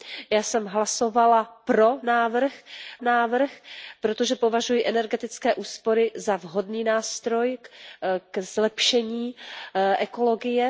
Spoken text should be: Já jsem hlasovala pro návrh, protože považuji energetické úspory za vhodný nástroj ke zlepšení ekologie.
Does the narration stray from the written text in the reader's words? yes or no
yes